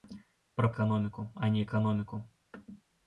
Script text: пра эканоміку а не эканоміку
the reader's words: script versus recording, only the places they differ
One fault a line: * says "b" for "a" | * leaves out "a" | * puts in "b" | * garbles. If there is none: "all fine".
all fine